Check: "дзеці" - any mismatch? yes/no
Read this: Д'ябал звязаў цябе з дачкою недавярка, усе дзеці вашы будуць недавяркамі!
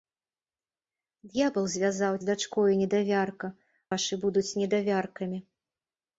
yes